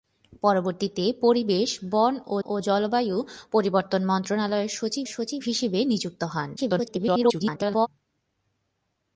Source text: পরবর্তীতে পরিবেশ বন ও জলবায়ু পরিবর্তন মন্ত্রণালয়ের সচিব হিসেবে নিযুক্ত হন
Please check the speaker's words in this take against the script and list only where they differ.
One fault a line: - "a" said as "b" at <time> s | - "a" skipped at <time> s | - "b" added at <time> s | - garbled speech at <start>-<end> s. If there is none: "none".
- "ও" added at 2.4 s
- "সচিব" added at 5.1 s
- garbled speech at 6.6-7.9 s